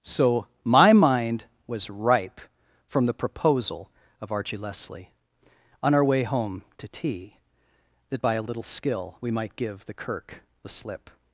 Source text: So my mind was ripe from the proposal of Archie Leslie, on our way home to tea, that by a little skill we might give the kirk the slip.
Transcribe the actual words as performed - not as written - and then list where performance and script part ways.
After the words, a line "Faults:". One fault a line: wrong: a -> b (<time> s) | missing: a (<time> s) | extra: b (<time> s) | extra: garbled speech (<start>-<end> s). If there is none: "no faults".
So my mind was ripe from the proposal of Archie Leslie, on our way home to tea, that by a little skill we might give the kirk the slip.
Faults:
no faults